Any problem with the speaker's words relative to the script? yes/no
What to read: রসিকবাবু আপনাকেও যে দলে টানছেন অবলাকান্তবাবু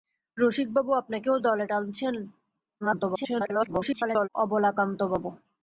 yes